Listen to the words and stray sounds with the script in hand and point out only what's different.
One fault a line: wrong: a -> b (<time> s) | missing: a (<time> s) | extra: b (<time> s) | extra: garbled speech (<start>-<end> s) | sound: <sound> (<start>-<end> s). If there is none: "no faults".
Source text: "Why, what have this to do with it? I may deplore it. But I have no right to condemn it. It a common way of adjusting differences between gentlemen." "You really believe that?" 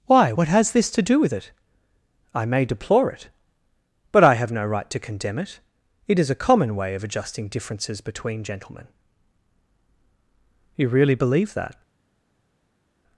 wrong: have -> has (0.5 s)
extra: is (6.2 s)